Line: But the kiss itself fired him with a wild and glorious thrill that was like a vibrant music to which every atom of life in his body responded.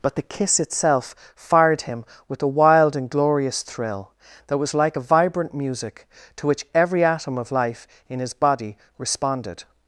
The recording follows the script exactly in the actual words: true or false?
true